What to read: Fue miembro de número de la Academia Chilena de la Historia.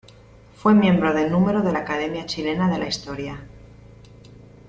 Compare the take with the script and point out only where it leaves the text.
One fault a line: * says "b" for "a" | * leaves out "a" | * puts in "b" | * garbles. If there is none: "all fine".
all fine